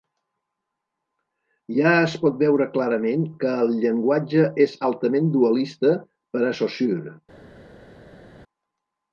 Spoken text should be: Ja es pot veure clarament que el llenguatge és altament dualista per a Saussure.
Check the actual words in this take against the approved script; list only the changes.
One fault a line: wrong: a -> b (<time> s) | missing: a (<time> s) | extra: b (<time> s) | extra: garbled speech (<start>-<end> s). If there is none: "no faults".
no faults